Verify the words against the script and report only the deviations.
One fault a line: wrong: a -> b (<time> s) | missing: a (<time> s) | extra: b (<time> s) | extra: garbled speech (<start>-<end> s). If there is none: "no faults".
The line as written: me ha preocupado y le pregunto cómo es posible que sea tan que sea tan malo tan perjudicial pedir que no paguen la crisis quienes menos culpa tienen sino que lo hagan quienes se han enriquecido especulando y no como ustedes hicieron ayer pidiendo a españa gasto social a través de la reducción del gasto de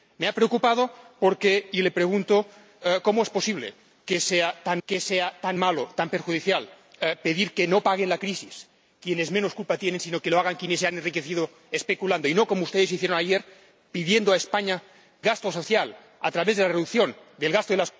no faults